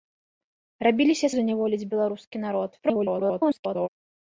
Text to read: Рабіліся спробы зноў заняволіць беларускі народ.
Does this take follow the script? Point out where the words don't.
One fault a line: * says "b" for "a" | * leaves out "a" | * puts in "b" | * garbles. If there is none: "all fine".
* leaves out "спробы зноў"
* garbles